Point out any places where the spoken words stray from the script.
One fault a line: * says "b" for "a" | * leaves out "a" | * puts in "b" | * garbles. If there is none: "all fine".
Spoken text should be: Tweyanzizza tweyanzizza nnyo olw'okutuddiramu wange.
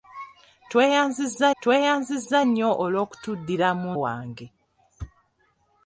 all fine